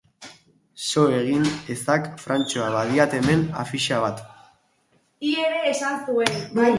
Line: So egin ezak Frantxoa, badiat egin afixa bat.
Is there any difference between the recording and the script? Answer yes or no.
yes